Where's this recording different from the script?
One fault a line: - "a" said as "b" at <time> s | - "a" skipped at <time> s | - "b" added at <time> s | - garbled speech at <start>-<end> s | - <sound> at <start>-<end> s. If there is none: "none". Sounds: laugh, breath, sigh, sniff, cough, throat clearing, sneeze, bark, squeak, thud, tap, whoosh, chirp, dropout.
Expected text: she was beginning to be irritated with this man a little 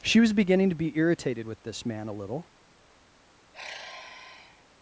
- sigh at 3.5-4.7 s